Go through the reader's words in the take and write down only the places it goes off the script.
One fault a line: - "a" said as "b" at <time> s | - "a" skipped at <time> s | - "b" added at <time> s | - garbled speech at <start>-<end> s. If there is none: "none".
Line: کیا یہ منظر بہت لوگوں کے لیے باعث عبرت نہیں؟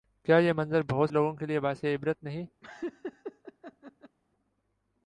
none